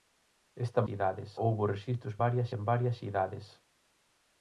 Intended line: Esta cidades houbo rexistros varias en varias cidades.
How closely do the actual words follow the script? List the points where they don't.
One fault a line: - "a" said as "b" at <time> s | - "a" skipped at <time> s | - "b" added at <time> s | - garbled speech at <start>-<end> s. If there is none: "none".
none